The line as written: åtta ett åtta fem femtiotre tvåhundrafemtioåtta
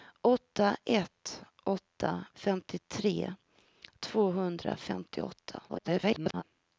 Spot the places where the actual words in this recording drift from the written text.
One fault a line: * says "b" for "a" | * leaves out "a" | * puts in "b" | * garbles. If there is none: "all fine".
* leaves out "fem"
* garbles